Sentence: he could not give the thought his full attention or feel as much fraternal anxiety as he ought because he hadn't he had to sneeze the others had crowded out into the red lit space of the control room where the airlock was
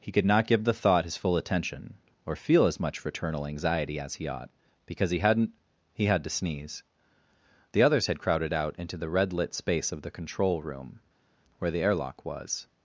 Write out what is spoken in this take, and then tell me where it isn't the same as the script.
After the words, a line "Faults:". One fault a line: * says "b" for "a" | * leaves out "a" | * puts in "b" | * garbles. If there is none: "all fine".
he could not give the thought his full attention or feel as much fraternal anxiety as he ought because he hadn't he had to sneeze the others had crowded out into the red lit space of the control room where the airlock was
Faults:
all fine